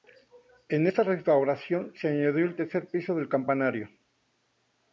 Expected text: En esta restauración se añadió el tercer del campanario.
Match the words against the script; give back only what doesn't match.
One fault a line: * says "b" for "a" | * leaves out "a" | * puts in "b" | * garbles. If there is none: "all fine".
* puts in "piso"